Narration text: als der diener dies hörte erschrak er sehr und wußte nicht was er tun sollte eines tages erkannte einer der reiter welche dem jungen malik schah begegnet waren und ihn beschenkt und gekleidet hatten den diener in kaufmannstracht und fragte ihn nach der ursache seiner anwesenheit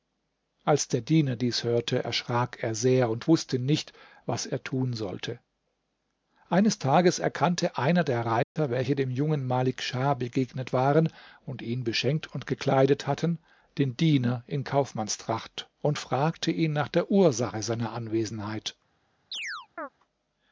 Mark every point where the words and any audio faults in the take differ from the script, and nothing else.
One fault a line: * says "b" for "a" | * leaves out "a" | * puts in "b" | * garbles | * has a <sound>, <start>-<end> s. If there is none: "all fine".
* has a dropout, 8.4-8.6 s
* has a chirp, 19.3-19.9 s